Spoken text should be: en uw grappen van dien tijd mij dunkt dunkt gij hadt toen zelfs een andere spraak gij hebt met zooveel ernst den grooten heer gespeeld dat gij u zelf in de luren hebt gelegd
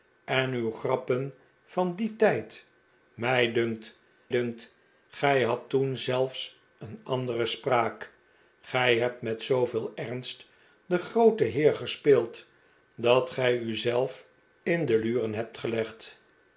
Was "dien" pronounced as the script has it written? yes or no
yes